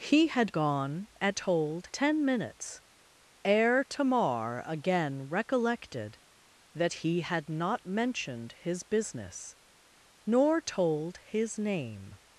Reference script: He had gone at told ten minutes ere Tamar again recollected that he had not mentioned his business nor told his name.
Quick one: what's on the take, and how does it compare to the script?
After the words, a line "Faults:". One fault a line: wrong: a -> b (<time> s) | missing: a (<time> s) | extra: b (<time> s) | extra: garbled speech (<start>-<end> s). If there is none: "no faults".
He had gone at told ten minutes ere Tamar again recollected that he had not mentioned his business nor told his name.
Faults:
no faults